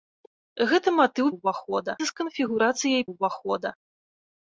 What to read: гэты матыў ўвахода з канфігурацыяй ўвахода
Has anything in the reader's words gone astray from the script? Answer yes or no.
no